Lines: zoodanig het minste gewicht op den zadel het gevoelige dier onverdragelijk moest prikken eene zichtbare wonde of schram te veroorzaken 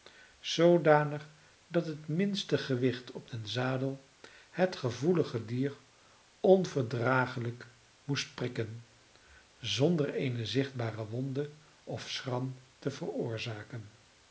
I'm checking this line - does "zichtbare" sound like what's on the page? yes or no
yes